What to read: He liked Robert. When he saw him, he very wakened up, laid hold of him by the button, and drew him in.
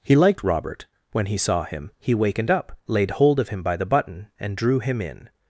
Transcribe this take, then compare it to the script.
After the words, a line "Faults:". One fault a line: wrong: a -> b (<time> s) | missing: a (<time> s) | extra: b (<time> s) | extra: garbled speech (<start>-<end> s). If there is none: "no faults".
He liked Robert. When he saw him, he wakened up, laid hold of him by the button, and drew him in.
Faults:
missing: very (2.1 s)